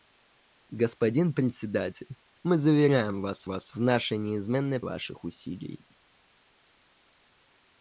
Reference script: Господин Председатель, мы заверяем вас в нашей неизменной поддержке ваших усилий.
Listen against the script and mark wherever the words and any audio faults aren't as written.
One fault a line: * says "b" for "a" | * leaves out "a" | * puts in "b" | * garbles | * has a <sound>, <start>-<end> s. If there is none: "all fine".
* puts in "вас"
* leaves out "поддержке"